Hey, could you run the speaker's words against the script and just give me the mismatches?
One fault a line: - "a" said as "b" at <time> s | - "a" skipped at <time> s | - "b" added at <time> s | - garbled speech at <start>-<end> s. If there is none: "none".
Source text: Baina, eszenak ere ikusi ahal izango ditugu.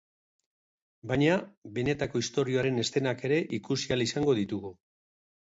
- "benetako istorioaren" added at 1.8 s